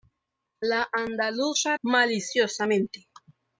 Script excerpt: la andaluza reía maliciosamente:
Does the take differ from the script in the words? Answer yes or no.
yes